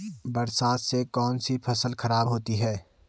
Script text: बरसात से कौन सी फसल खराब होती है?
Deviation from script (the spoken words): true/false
false